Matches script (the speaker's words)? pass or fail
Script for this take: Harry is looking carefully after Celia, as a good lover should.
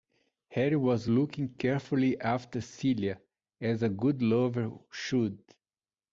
fail